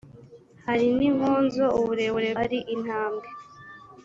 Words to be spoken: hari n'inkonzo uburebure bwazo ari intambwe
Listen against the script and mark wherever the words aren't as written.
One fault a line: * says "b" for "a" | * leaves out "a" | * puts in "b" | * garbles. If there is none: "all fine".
* leaves out "bwazo"